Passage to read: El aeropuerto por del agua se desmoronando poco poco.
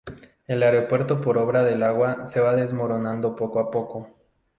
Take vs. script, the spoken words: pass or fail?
fail